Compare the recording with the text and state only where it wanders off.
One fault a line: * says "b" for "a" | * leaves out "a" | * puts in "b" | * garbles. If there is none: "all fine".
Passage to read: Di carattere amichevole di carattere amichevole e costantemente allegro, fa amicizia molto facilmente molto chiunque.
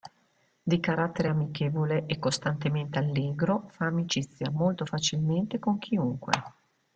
* leaves out "di carattere amichevole"
* says "con" for "molto"